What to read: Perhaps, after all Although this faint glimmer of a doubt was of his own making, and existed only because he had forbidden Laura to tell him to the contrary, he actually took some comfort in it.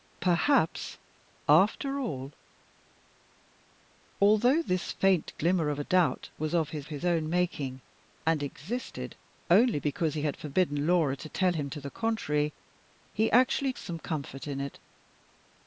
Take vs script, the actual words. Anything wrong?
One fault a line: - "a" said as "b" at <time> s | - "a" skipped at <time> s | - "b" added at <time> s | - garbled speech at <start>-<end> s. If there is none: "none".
- "his" added at 6.9 s
- "took" skipped at 13.7 s